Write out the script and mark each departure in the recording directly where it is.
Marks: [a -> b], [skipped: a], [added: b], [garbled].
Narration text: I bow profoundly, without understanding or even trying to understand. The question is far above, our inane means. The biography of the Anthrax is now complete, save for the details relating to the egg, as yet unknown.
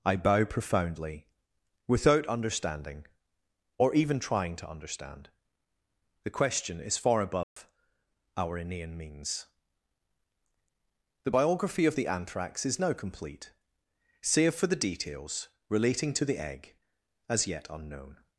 I bow profoundly, without understanding or even trying to understand. The question is far above, our inane means. The biography of the Anthrax is now complete, save for the details relating to the egg, as yet unknown.